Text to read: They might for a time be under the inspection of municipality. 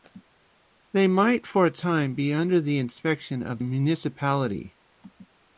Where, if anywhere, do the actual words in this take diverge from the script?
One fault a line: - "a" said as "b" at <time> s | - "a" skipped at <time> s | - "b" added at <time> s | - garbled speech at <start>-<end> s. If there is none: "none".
none